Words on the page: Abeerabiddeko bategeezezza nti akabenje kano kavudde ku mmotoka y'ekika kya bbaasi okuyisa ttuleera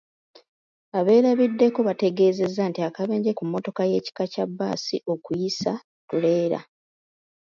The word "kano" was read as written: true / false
false